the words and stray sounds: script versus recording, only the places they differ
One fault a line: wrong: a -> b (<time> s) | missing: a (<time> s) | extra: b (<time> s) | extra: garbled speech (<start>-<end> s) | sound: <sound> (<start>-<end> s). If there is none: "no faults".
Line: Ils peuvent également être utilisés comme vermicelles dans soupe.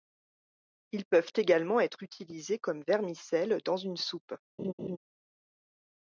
extra: une (3.8 s)
sound: laugh (4.6-5.0 s)